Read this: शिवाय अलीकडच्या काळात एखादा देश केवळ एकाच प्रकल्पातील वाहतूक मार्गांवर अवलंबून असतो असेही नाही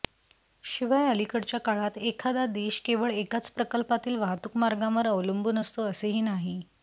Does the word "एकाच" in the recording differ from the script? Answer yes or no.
no